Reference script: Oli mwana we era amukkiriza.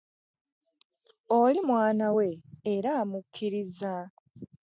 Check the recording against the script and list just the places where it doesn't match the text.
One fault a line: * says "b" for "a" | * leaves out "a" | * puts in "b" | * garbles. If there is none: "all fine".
all fine